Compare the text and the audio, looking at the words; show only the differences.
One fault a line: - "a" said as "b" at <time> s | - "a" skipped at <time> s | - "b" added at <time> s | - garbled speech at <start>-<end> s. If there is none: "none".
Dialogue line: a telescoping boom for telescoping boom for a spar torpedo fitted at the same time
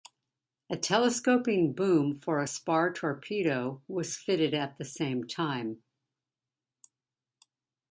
- "telescoping boom for" skipped at 2.4 s
- "was" added at 3.9 s